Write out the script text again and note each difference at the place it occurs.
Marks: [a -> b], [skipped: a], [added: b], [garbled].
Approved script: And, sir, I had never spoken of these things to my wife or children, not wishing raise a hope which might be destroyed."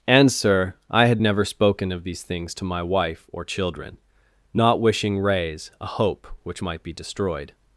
And, sir, I had never spoken of these things to my wife or children, not wishing raise a hope which might be destroyed."